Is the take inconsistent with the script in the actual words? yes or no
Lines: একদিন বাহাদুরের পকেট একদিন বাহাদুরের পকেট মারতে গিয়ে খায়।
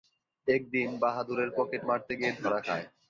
yes